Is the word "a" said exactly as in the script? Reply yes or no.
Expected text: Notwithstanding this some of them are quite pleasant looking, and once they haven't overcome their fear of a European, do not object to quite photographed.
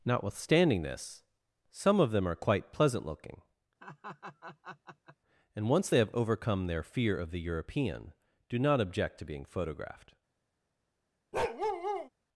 no